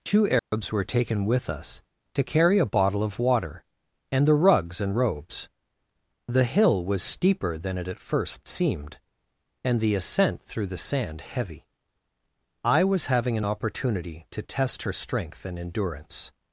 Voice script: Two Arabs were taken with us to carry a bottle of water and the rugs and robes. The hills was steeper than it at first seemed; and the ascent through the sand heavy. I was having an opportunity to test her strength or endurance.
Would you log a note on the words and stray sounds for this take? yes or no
yes